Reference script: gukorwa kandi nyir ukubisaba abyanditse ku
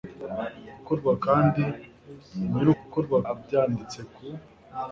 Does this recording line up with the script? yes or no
no